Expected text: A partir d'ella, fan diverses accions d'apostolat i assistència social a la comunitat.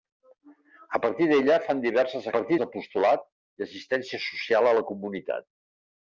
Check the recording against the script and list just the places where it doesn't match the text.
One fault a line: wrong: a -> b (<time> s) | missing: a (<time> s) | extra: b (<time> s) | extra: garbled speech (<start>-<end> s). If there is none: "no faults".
wrong: accions -> partir (2.3 s)